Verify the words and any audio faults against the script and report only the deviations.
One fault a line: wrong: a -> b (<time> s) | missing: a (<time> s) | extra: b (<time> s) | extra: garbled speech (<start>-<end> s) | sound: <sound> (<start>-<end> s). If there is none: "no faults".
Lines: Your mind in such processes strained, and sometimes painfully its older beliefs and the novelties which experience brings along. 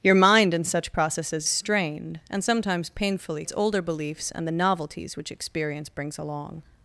no faults